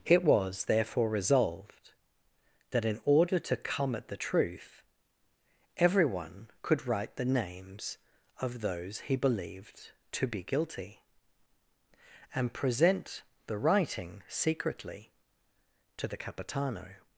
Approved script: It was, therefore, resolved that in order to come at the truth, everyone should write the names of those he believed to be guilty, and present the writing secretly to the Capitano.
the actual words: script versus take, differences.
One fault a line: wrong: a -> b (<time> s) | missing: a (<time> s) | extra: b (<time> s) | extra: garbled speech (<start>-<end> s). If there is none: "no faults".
wrong: should -> could (6.6 s)